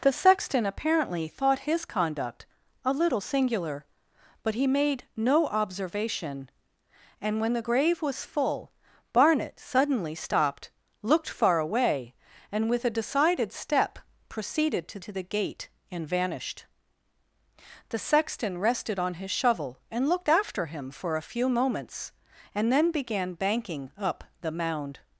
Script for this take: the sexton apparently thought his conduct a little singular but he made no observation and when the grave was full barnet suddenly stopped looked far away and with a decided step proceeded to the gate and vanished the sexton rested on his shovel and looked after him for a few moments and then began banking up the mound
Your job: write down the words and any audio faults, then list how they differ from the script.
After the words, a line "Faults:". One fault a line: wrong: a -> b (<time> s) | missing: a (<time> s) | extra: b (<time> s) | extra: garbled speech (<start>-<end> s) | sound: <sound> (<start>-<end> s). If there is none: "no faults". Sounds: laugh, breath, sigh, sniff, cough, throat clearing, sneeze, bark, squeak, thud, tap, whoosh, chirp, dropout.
the sexton apparently thought his conduct a little singular but he made no observation and when the grave was full barnet suddenly stopped looked far away and with a decided step proceeded to to the gate and vanished the sexton rested on his shovel and looked after him for a few moments and then began banking up the mound
Faults:
extra: to (15.0 s)